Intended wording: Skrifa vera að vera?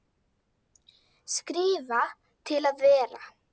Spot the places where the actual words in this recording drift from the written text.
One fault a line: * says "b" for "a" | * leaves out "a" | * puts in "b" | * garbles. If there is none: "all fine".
* says "til" for "vera"